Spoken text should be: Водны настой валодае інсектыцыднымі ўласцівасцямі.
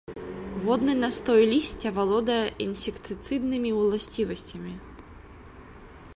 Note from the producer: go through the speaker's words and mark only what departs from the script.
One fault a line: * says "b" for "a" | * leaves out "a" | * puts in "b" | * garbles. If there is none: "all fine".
* puts in "лісця"